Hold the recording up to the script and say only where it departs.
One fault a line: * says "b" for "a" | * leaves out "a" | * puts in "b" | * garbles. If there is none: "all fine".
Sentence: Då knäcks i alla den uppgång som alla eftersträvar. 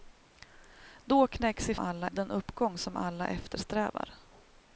all fine